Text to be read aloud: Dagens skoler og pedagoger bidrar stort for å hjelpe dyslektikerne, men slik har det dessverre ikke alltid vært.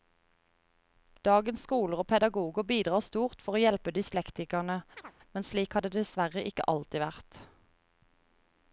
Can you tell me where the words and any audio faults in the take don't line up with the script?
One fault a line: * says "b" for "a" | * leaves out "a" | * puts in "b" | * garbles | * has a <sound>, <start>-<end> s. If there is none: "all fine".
* has a chirp, 5.0-5.1 s